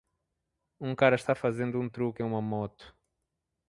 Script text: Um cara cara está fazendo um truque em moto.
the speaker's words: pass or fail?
fail